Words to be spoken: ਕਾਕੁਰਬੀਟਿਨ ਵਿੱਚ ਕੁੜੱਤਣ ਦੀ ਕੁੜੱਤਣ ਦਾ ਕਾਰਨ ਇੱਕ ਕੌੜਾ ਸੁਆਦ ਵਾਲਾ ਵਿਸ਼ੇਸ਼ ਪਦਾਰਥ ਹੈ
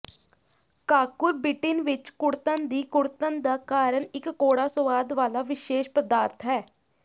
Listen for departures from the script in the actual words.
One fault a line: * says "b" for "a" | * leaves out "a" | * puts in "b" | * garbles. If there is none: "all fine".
all fine